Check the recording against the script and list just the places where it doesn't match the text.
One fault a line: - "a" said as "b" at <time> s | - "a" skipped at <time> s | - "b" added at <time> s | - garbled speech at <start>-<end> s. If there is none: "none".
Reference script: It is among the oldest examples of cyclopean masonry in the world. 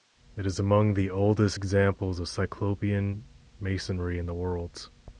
none